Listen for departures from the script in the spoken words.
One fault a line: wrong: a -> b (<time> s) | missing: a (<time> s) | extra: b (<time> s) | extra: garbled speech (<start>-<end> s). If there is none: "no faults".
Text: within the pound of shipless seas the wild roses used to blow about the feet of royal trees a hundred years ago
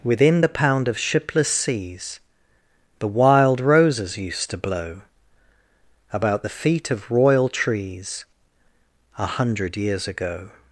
no faults